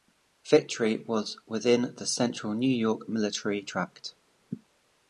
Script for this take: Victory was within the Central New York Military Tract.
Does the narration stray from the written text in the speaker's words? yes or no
no